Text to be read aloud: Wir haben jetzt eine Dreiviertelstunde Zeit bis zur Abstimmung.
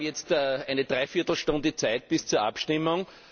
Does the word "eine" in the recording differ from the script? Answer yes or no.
no